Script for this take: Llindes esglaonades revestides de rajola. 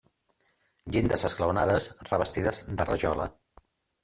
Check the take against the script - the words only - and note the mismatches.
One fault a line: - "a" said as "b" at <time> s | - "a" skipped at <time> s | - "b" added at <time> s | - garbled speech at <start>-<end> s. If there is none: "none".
none